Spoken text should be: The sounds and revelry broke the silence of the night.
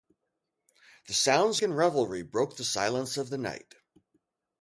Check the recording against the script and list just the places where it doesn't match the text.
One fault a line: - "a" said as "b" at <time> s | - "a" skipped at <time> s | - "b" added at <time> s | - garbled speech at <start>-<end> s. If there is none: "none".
none